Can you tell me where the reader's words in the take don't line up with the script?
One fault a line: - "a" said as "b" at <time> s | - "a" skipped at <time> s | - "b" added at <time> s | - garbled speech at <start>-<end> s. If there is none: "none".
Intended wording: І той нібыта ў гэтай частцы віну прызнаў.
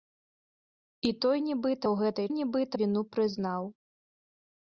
- "частцы" said as "нібыта" at 2.4 s